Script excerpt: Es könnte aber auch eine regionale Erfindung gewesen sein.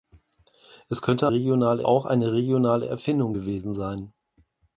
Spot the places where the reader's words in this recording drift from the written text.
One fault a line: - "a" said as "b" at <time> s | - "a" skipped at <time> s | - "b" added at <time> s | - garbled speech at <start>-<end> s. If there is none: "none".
- "aber" said as "regionale" at 1.3 s